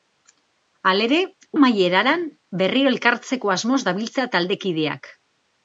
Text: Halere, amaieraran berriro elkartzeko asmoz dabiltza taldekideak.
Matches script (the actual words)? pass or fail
pass